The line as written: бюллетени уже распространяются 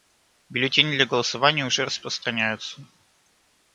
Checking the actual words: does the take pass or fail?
fail